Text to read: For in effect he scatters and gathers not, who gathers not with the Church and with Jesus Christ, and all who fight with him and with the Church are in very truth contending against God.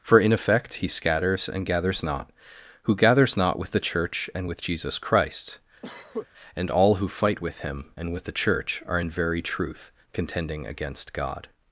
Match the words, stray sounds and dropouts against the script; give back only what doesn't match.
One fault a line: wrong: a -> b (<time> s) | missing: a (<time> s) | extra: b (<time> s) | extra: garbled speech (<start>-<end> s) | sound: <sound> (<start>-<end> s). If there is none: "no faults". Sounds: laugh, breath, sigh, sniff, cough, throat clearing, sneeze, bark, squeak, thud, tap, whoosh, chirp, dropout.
sound: cough (5.8-6.3 s)